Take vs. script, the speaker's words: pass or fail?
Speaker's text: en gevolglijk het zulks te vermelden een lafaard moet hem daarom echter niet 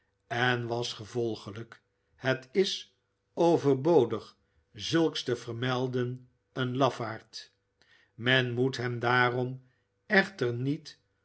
fail